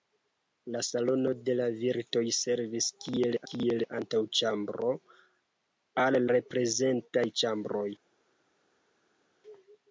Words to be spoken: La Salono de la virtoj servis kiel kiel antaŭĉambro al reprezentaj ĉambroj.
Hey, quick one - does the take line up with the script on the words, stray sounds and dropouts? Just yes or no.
yes